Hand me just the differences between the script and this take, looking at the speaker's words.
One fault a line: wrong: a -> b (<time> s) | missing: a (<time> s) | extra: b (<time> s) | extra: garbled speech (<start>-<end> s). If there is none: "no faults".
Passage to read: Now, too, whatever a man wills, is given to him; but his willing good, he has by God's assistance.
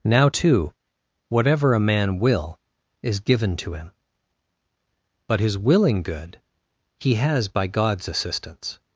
wrong: wills -> will (2.2 s)